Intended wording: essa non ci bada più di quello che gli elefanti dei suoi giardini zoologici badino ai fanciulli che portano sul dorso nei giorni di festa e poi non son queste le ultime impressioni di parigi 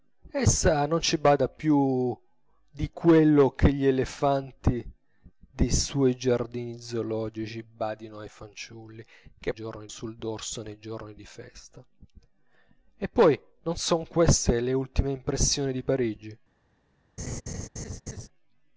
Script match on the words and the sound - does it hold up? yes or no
no